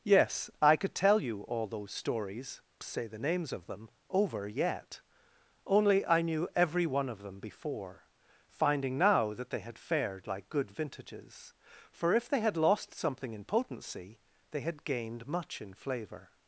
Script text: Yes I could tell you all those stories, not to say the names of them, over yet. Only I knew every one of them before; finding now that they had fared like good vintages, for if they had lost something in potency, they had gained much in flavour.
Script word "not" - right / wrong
wrong